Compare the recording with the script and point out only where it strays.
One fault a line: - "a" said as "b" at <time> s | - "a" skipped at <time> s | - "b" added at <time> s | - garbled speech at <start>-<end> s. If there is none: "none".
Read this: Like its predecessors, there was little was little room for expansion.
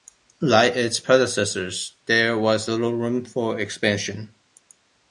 - "was little" skipped at 2.9 s